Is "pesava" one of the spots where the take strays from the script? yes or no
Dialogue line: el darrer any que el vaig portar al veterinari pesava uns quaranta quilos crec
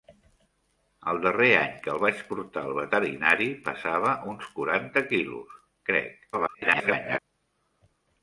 no